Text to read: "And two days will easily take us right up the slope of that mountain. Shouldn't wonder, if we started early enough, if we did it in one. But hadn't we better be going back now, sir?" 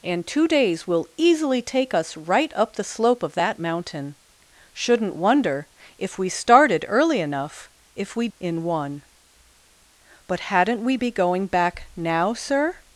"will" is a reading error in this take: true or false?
false